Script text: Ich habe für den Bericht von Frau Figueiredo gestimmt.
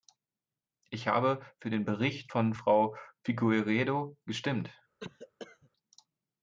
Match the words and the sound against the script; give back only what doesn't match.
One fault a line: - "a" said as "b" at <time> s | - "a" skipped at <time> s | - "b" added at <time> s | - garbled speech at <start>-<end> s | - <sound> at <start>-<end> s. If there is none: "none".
- cough at 5.0-5.7 s